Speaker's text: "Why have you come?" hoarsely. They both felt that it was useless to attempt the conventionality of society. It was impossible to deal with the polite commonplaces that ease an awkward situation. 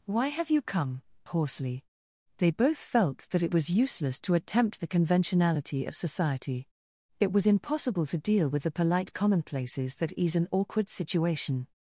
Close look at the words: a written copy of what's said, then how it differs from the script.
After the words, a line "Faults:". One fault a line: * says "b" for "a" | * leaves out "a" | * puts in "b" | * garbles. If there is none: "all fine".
"Why have you come?" hoarsely. They both felt that it was useless to attempt the conventionality of society. It was impossible to deal with the polite commonplaces that ease an awkward situation.
Faults:
all fine